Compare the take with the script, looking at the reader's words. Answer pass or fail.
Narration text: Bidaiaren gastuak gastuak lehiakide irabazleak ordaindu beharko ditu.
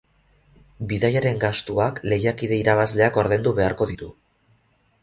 fail